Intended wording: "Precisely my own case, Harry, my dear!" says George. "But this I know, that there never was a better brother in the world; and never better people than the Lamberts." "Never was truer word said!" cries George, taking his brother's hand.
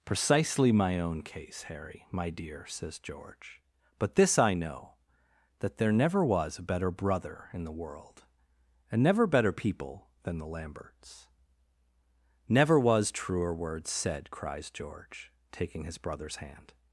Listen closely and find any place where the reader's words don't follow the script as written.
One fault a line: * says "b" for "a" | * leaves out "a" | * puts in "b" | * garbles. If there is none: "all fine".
all fine